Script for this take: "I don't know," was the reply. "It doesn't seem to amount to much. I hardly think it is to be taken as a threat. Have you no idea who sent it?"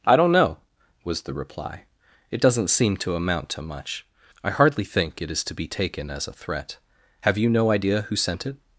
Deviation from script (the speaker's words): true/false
false